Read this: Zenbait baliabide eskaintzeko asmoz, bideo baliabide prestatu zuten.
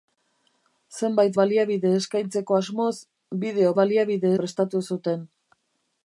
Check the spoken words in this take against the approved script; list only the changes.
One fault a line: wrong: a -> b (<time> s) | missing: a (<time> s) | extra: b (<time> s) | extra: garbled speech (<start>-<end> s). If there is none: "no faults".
no faults